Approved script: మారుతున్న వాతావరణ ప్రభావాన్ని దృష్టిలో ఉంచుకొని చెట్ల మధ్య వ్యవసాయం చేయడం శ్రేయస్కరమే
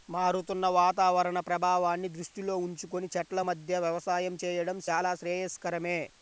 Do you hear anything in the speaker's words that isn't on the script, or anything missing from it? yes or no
yes